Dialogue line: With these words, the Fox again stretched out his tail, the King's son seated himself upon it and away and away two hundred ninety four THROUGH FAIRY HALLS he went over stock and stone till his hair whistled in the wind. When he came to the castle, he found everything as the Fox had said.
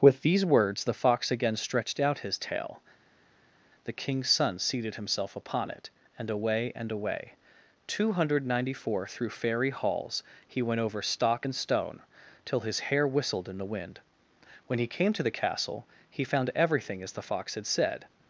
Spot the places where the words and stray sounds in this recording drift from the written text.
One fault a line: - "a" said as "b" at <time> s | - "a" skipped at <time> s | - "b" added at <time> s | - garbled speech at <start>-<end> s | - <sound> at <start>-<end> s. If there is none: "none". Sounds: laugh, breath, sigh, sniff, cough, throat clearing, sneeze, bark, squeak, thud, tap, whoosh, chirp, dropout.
none